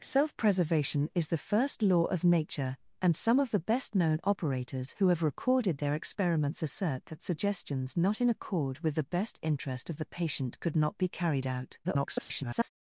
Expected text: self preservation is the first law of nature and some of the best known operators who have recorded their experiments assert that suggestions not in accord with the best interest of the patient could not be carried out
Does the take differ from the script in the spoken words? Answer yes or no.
yes